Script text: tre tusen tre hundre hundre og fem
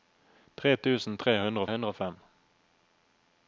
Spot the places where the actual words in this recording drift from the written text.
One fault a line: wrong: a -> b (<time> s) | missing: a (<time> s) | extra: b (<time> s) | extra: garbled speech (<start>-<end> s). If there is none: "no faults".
no faults